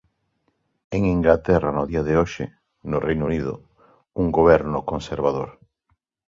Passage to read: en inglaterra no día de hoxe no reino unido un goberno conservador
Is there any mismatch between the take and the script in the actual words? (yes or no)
no